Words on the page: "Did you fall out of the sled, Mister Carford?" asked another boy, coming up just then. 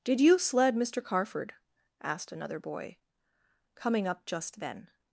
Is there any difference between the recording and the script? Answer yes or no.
yes